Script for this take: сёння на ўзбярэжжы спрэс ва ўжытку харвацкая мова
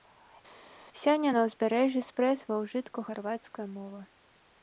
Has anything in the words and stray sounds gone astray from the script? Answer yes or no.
no